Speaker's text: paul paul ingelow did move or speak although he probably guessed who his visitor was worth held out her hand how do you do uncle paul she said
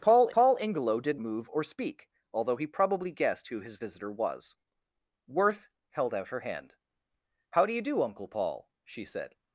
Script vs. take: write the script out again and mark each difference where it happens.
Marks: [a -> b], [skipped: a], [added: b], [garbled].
paul paul ingelow did move or speak although he probably guessed who his visitor was worth held out her hand how do you do uncle paul she said